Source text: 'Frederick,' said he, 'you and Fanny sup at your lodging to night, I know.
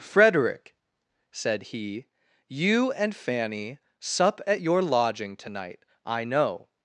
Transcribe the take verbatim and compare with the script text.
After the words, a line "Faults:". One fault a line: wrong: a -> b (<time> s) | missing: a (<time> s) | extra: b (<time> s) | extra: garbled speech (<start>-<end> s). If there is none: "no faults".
'Frederick,' said he, 'you and Fanny sup at your lodging to night, I know.
Faults:
no faults